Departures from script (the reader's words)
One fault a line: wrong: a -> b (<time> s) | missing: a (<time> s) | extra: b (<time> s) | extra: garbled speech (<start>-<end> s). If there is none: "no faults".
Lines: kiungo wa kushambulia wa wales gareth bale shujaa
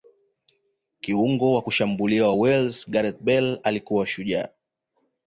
extra: alikuwa (3.6 s)